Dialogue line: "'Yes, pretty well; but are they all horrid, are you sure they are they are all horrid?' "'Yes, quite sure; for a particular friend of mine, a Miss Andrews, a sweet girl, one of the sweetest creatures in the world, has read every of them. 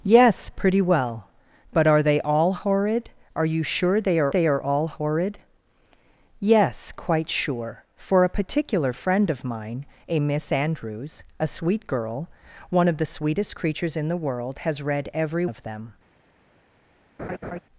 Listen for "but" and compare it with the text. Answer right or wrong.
right